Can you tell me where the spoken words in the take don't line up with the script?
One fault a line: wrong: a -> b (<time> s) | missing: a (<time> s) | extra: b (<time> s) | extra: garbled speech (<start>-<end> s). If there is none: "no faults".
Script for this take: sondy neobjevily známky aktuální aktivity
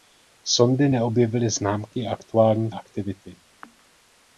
no faults